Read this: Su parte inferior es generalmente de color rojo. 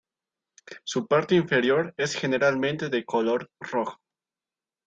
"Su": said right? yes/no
yes